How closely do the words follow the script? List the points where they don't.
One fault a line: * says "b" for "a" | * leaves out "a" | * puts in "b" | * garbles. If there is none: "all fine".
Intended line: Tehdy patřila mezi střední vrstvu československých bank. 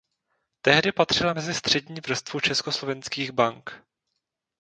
all fine